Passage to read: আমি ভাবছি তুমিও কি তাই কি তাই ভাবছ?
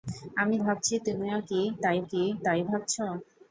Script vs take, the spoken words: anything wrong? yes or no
no